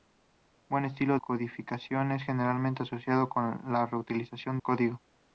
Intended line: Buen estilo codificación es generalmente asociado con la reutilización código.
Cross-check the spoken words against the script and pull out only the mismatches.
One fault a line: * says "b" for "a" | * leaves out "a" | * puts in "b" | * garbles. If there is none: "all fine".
all fine